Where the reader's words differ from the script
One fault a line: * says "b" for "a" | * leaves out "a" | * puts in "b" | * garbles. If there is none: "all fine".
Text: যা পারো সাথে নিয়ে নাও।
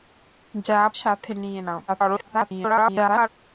* leaves out "পারো"
* garbles